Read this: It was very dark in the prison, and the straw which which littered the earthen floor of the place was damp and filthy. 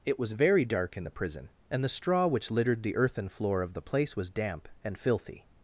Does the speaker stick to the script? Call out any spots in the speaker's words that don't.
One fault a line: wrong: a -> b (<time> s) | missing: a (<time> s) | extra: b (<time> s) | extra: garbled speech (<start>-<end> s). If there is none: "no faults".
missing: which (2.5 s)